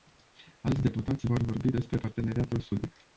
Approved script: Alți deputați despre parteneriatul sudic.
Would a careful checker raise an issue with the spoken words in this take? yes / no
yes